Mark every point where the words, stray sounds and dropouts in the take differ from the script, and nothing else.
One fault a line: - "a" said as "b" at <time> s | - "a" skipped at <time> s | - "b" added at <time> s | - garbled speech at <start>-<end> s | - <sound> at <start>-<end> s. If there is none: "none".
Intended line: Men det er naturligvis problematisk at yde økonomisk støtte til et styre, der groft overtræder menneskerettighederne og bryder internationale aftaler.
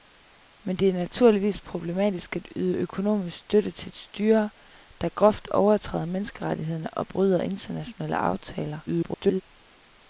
- garbled speech at 8.9-9.4 s